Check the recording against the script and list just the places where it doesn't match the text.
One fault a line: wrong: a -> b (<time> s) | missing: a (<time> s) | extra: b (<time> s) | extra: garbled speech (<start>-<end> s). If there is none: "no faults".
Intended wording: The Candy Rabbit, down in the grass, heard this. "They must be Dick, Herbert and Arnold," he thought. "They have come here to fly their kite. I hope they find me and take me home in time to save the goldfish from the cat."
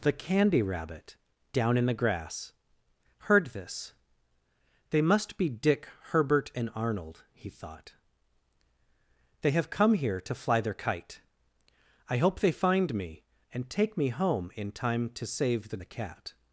missing: goldfish from (15.8 s)